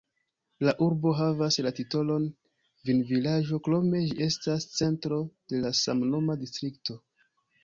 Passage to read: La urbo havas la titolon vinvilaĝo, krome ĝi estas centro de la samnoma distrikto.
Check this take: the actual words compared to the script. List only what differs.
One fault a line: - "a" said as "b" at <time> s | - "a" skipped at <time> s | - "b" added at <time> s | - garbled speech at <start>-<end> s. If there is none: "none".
none